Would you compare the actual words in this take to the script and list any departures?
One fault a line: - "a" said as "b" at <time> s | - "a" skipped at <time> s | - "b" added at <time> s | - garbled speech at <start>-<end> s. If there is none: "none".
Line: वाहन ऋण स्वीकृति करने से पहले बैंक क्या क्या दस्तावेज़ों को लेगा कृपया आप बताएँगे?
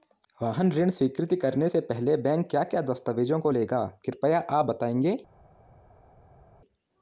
none